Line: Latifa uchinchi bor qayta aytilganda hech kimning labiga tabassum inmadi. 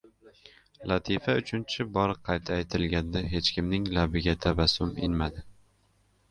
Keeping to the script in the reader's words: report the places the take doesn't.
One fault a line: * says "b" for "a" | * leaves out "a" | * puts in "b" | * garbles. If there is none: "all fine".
all fine